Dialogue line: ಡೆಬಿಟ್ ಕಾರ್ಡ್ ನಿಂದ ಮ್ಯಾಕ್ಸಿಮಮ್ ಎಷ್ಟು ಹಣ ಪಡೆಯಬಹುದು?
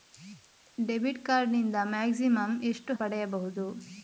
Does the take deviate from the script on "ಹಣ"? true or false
true